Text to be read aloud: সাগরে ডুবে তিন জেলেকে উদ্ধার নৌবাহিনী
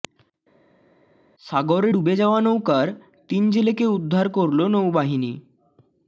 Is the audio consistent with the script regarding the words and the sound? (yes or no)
no